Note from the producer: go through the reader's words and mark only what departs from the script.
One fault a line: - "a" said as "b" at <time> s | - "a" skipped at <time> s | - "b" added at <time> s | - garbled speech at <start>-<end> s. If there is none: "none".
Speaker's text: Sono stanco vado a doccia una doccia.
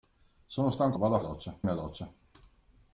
none